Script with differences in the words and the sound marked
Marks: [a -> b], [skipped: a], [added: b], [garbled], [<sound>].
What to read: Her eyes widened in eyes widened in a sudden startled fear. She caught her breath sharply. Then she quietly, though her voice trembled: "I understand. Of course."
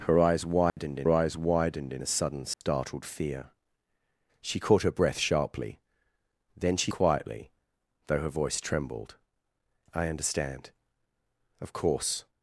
Her eyes widened [dropout] in eyes widened in a sudden startled [dropout] fear. She caught her breath sharply. Then she quietly, though her voice trembled: "I understand. Of course."